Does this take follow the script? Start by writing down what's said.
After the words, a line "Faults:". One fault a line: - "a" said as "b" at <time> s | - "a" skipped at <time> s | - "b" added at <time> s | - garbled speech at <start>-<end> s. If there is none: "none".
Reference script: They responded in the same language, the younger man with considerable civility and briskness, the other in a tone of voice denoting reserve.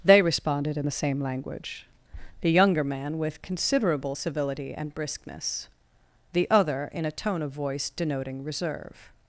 They responded in the same language, the younger man with considerable civility and briskness, the other in a tone of voice denoting reserve.
Faults:
none